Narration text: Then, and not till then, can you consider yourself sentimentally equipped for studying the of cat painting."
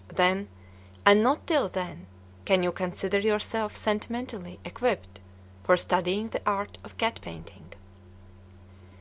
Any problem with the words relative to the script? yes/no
yes